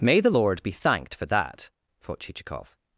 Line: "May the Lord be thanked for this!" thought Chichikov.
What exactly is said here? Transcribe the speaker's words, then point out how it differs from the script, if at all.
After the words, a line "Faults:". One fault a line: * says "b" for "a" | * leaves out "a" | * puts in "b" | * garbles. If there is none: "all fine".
"May the Lord be thanked for that!" thought Chichikov.
Faults:
* says "that" for "this"